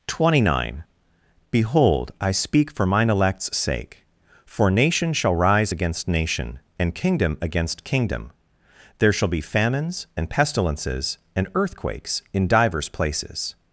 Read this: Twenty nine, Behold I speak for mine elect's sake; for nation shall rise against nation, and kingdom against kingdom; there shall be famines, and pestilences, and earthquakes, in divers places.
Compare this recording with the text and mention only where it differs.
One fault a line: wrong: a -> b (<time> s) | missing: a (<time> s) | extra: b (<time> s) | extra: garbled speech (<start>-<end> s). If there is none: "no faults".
no faults